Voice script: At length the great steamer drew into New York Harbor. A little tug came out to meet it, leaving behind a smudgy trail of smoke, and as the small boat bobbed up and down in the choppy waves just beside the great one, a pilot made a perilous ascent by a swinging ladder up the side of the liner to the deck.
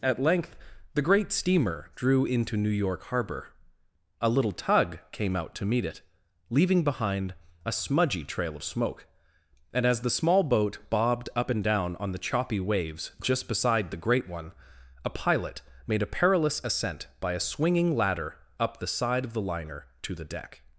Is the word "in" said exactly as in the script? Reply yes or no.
no